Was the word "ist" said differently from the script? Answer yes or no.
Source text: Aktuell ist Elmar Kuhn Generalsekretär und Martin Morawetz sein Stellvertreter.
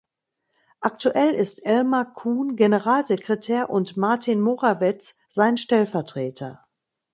no